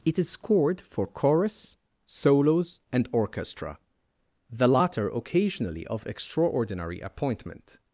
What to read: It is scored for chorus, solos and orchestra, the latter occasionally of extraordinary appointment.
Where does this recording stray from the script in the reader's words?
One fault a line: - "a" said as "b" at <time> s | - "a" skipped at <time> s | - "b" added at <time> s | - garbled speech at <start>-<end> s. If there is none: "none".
none